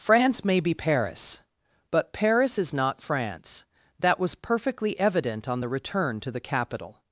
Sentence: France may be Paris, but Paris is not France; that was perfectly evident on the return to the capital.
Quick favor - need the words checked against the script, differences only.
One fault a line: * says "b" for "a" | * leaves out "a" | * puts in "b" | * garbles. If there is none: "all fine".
all fine